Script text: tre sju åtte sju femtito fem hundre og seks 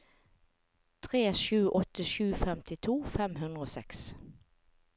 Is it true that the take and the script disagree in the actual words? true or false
false